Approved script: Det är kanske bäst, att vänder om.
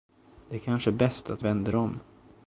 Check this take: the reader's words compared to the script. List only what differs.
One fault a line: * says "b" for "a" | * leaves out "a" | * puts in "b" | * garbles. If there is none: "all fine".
all fine